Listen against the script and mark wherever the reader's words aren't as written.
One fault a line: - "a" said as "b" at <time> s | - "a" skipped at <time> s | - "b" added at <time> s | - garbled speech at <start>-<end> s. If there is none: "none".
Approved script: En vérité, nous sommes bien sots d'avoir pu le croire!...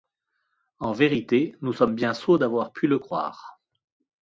none